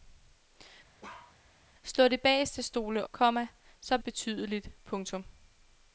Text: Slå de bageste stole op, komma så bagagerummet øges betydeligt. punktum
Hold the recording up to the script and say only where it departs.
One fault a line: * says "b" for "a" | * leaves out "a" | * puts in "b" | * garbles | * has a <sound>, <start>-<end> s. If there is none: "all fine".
* has a bark, 1.0-1.4 s
* leaves out "op"
* leaves out "bagagerummet øges"